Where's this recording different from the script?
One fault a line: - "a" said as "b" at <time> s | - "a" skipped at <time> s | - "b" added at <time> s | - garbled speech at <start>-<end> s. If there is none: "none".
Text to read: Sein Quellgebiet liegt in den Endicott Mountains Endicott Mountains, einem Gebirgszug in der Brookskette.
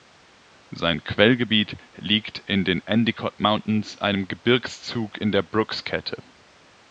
- "Endicott Mountains" skipped at 4.0 s